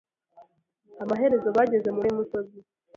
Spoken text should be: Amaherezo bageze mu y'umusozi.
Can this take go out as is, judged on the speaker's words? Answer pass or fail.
pass